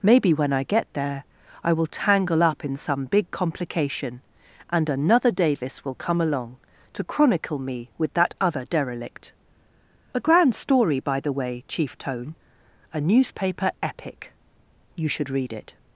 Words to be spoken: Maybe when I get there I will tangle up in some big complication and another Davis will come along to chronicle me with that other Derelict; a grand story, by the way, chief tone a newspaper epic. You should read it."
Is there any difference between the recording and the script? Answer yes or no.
no